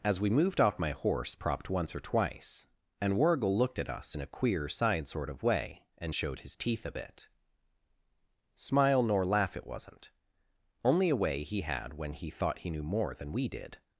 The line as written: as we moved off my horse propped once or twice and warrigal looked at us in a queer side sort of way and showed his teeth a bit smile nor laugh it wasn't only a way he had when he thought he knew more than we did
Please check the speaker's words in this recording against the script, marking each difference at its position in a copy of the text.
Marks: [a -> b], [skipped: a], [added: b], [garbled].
as we moved off my horse propped once or twice and warrigal looked at us in a queer side sort of way and showed his teeth a bit smile nor laugh it wasn't only a way he had when he thought he knew more than we did